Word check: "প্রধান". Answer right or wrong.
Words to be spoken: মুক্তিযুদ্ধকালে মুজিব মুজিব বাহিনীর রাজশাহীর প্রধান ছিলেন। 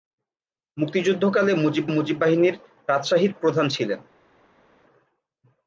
right